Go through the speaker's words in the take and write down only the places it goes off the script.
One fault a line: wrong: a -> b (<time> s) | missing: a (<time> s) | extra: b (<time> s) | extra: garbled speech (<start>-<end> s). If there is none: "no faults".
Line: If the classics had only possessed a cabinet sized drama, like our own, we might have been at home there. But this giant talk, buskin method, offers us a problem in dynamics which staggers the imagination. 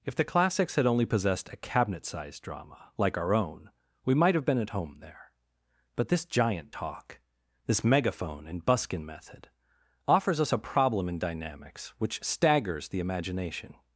extra: this megaphone and (7.7 s)